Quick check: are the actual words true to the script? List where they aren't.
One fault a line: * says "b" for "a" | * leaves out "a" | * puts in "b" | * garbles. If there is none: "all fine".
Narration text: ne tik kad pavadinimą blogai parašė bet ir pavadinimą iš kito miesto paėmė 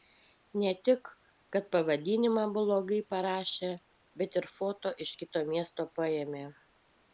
* says "foto" for "pavadinimą"